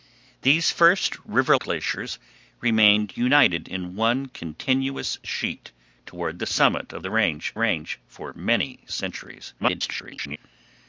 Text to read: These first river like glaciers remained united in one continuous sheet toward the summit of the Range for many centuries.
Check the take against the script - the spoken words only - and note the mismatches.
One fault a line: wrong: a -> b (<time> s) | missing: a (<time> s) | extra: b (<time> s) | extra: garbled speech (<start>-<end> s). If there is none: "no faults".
missing: like (1.6 s)
extra: Range (7.5 s)
extra: garbled speech (9.6-10.4 s)